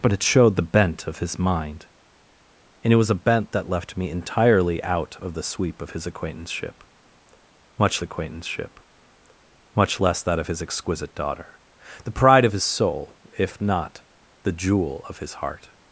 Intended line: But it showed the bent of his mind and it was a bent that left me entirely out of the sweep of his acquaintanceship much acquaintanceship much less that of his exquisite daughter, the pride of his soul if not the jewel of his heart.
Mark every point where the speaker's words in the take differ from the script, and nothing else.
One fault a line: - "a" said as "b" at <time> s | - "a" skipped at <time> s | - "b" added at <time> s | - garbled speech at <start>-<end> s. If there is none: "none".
none